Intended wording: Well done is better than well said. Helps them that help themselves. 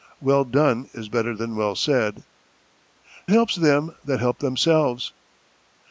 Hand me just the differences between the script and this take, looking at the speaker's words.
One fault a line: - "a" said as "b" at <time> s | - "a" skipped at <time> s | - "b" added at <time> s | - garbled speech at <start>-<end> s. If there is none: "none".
none